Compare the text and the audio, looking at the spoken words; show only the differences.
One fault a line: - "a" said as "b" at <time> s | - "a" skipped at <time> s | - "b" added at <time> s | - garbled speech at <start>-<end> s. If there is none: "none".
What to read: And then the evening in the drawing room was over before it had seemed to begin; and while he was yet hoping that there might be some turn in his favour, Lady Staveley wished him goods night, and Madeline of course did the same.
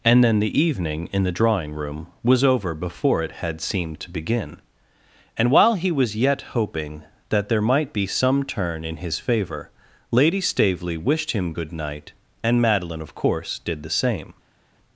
- "goods" said as "good" at 11.5 s